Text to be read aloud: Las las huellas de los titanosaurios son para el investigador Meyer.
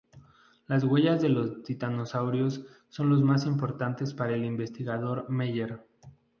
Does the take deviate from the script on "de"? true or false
false